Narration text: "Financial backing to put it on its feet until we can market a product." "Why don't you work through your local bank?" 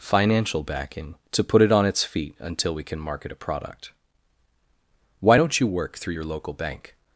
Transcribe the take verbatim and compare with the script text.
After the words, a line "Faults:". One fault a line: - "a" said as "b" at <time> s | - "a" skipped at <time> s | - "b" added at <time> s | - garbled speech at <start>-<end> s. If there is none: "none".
"Financial backing to put it on its feet until we can market a product." "Why don't you work through your local bank?"
Faults:
none